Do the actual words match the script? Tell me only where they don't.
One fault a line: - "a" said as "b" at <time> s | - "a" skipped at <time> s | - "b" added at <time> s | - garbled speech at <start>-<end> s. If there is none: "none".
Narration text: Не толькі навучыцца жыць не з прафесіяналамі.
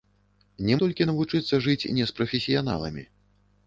none